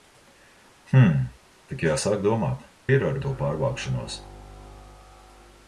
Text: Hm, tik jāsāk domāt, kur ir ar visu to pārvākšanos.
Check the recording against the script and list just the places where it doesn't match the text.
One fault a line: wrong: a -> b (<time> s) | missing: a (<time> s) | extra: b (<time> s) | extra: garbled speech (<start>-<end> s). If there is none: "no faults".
missing: kur (2.6 s)
missing: visu (3.2 s)